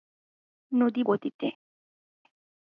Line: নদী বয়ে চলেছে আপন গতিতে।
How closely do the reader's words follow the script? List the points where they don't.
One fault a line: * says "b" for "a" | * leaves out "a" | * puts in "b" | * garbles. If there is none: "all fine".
* leaves out "বয়ে চলেছে আপন"